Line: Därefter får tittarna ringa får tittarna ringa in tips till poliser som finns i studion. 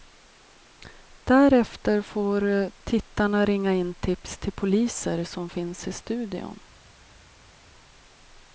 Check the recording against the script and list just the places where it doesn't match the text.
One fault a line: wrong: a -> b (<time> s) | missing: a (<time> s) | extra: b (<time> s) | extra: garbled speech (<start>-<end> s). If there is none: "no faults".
missing: får tittarna ringa (3.7 s)